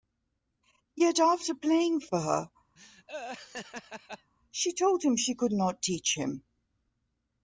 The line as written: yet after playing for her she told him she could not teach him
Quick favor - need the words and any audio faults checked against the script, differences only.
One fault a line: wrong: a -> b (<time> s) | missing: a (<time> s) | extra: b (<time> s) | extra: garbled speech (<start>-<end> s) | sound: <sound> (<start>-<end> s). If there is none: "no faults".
sound: laugh (2.8-4.3 s)